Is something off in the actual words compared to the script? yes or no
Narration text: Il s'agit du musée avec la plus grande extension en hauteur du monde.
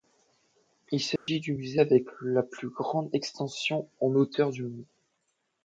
no